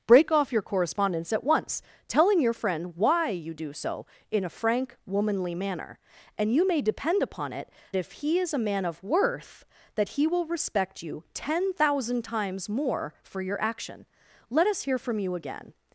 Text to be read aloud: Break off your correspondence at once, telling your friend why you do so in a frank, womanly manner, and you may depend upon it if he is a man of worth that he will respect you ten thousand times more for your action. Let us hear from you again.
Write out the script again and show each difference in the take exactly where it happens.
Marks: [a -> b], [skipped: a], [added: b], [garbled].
Break off your correspondence at once, telling your friend why you do so in a frank, womanly manner, and you may depend upon it if he is a man of worth that he will respect you ten thousand times more for your action. Let us hear from you again.